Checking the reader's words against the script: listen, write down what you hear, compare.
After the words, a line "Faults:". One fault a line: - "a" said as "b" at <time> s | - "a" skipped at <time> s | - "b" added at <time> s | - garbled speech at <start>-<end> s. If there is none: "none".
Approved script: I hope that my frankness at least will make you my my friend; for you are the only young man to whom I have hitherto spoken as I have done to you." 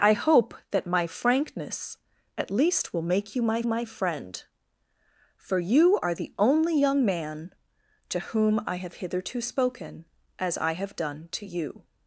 I hope that my frankness at least will make you my my friend; for you are the only young man to whom I have hitherto spoken as I have done to you."
Faults:
none